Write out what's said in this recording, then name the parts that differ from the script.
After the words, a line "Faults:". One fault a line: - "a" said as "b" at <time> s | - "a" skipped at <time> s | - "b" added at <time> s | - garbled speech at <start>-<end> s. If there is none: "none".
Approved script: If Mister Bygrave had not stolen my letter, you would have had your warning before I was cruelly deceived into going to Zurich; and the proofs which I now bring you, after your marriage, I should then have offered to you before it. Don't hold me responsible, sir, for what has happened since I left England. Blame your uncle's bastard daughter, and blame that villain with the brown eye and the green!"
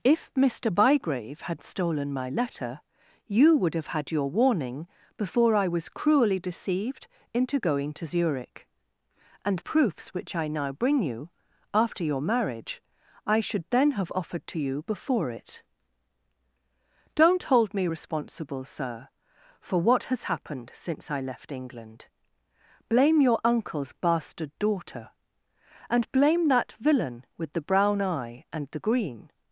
If Mister Bygrave had stolen my letter, you would have had your warning before I was cruelly deceived into going to Zurich; and proofs which I now bring you, after your marriage, I should then have offered to you before it. Don't hold me responsible, sir, for what has happened since I left England. Blame your uncle's bastard daughter, and blame that villain with the brown eye and the green!"
Faults:
- "not" skipped at 1.6 s
- "the" skipped at 9.6 s